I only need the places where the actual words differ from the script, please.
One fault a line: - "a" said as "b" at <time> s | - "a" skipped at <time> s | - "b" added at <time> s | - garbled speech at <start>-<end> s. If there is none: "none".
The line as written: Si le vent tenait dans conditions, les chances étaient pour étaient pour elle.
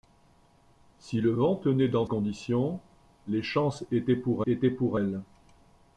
none